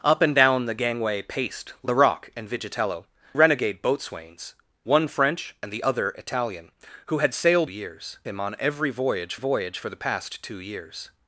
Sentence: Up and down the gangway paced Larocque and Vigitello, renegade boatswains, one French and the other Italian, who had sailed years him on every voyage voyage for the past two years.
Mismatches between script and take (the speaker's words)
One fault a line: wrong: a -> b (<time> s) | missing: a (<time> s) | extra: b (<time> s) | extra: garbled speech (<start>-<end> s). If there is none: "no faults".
no faults